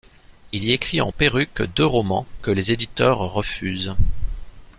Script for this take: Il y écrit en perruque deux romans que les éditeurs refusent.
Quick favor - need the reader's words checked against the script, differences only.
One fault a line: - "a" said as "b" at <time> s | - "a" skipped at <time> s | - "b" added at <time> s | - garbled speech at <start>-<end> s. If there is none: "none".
none